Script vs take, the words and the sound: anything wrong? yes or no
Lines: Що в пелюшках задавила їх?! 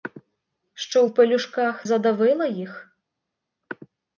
no